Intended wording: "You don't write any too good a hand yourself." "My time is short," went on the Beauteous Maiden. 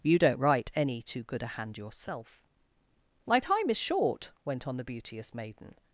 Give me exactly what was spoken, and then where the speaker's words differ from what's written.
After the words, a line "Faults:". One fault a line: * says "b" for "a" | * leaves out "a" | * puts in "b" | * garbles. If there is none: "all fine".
"You don't write any too good a hand yourself." "My time is short," went on the Beauteous Maiden.
Faults:
all fine